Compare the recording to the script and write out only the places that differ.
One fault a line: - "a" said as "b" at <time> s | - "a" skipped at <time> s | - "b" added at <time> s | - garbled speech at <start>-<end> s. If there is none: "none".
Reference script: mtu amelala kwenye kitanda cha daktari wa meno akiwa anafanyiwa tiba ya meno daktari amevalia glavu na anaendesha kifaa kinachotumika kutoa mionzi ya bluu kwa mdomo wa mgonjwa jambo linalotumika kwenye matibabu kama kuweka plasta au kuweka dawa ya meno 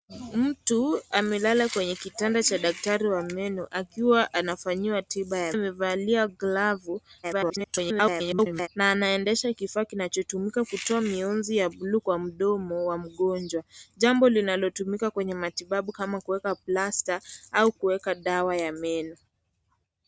- "meno daktari" skipped at 5.5 s
- garbled speech at 7.2-8.7 s